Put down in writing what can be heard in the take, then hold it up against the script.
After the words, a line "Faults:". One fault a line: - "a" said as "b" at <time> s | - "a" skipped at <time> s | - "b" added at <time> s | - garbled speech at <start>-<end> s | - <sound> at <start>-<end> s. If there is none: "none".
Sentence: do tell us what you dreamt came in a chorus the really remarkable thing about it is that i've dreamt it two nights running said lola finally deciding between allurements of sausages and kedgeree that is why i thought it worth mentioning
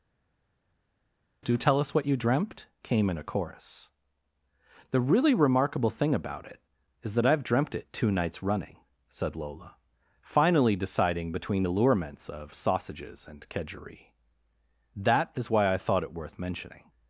do tell us what you dreamt came in a chorus the really remarkable thing about it is that i've dreamt it two nights running said lola finally deciding between allurements of sausages and kedgeree that is why i thought it worth mentioning
Faults:
none